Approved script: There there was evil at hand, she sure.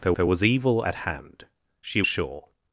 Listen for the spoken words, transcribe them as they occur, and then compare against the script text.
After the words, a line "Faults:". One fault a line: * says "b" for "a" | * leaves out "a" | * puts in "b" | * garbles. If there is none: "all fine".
There there was evil at hand, she sure.
Faults:
all fine